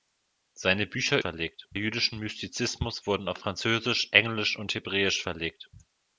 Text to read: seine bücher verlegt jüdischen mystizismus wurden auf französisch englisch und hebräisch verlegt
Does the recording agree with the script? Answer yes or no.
yes